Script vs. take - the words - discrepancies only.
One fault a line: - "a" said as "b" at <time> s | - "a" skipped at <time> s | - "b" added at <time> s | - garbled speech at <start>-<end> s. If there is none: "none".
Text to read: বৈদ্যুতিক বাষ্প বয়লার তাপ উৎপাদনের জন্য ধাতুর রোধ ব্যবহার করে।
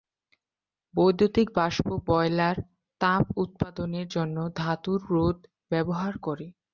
none